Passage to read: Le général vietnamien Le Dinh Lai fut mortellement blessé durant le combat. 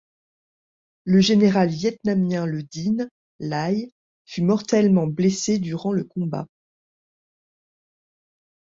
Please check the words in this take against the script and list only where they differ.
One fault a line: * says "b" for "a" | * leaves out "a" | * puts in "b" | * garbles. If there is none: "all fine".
all fine